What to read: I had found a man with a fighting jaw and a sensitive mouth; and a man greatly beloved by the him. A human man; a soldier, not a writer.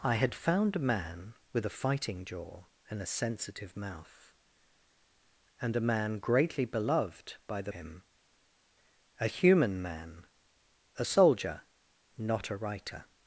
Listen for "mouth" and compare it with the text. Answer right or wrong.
right